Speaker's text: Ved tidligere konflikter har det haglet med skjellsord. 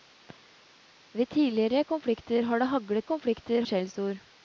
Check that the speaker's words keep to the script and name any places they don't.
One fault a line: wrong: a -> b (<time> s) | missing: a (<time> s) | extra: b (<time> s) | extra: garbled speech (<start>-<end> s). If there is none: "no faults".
wrong: med -> konflikter (3.0 s)